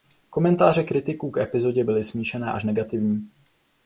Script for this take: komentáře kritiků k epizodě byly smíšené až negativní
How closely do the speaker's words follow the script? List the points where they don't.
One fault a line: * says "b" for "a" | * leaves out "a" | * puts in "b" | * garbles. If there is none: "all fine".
all fine